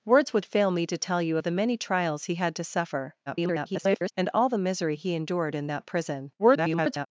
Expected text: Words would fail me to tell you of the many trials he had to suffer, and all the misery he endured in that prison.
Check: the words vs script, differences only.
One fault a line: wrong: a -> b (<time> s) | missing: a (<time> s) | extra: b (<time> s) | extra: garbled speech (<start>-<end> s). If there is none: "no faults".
extra: garbled speech (3.3-4.1 s)
extra: garbled speech (6.4-7.1 s)